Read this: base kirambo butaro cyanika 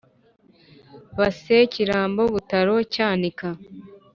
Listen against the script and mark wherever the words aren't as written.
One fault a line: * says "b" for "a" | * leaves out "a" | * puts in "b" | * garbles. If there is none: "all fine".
all fine